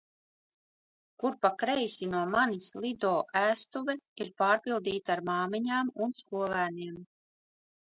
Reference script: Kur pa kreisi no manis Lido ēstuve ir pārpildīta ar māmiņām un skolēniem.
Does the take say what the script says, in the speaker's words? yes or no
yes